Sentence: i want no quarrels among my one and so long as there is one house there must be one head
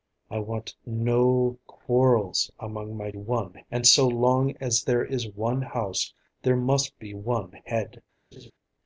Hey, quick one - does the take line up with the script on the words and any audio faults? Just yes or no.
no